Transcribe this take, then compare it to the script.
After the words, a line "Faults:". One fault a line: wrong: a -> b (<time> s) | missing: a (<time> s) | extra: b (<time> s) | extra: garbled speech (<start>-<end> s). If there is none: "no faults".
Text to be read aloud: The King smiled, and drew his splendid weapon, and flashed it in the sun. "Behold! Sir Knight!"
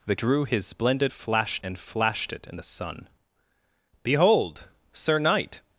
The Drew his splendid flashed, and flashed it in the sun. "Behold! Sir Knight!"
Faults:
missing: King smiled and (0.1 s)
wrong: weapon -> flashed (1.1 s)